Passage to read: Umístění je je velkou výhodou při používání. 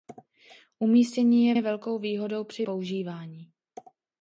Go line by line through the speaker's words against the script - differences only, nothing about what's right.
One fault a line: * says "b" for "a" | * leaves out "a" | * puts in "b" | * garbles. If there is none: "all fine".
all fine